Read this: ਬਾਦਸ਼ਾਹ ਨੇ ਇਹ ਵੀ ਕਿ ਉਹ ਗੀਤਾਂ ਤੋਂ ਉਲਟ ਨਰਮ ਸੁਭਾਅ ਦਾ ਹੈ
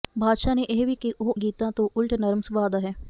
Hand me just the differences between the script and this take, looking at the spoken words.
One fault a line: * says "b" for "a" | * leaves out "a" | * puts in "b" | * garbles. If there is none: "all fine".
all fine